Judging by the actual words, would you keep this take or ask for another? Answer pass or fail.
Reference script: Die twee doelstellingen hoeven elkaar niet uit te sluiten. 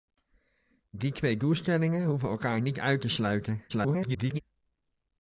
fail